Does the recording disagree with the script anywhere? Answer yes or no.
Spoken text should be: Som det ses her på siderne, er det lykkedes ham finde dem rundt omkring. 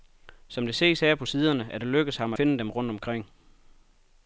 no